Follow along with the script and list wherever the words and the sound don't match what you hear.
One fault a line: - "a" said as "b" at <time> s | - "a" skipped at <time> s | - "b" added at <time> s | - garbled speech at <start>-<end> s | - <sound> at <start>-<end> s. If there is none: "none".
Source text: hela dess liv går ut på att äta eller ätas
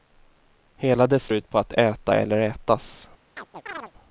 - "liv går" skipped at 1.3 s
- chirp at 3.4-3.9 s